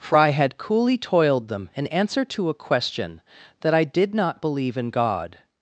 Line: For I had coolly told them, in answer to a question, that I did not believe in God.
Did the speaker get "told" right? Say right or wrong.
wrong